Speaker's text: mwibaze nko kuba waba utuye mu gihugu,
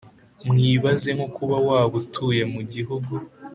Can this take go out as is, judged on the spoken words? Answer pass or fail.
pass